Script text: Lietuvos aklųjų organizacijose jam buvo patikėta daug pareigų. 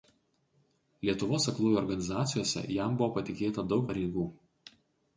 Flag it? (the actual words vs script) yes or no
no